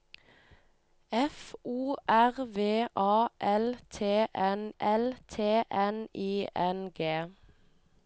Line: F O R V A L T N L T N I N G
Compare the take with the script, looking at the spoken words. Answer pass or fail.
pass